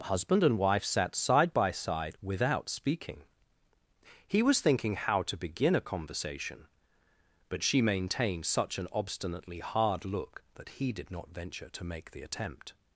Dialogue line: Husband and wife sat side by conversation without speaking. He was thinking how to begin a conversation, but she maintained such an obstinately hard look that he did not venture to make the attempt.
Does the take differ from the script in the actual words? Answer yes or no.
yes